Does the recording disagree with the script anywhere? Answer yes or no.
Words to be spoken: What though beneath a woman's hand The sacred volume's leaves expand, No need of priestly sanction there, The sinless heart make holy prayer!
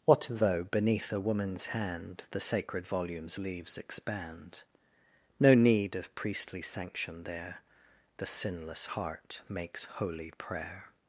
yes